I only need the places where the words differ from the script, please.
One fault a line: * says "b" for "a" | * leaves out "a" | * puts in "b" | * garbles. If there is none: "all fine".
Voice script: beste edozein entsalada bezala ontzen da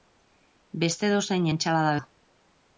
* leaves out "bezala ontzen"